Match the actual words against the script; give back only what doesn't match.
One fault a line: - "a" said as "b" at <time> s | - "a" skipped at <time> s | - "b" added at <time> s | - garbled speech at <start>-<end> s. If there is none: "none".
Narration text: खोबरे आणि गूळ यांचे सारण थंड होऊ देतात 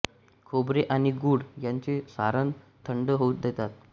none